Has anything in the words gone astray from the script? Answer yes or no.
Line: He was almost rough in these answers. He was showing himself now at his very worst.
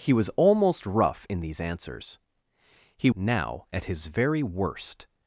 yes